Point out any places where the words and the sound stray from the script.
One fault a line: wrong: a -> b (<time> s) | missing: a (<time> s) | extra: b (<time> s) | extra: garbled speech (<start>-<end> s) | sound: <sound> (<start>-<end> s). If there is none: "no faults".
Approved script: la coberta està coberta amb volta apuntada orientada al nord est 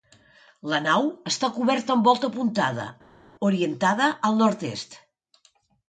wrong: coberta -> nau (0.8 s)